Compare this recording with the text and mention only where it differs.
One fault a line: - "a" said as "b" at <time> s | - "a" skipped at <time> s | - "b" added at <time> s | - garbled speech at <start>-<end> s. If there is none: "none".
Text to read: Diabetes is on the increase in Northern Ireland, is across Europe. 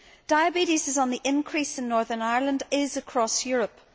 none